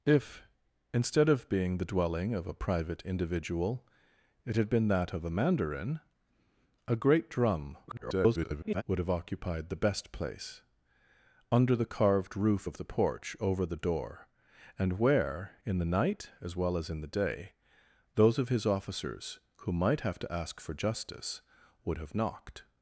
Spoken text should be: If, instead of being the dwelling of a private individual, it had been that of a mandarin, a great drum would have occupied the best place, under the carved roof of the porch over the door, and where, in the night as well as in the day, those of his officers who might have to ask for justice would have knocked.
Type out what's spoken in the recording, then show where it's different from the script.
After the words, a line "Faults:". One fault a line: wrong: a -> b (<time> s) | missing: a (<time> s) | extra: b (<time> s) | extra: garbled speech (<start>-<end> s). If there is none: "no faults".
If, instead of being the dwelling of a private individual, it had been that of a mandarin, a great drum [garbled] would have occupied the best place, under the carved roof of the porch over the door, and where, in the night as well as in the day, those of his officers who might have to ask for justice would have knocked.
Faults:
extra: garbled speech (7.9-8.8 s)